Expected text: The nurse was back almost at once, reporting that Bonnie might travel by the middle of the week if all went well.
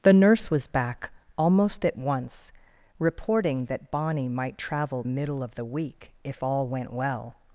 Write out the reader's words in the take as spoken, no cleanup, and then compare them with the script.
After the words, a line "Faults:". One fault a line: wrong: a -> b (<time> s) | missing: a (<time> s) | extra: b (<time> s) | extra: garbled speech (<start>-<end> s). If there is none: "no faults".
The nurse was back almost at once, reporting that Bonnie might travel middle of the week if all went well.
Faults:
missing: by the (5.0 s)